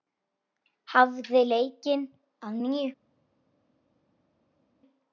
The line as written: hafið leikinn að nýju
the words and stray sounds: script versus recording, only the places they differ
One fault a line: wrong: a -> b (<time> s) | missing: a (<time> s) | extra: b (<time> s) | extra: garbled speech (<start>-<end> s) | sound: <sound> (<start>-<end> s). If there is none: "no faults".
no faults